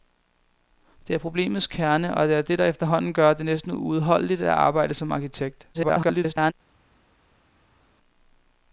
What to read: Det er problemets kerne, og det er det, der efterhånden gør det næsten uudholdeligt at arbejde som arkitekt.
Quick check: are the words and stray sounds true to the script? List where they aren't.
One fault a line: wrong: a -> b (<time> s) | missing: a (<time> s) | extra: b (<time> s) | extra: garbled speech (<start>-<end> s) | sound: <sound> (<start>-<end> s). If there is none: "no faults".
extra: garbled speech (5.7-6.5 s)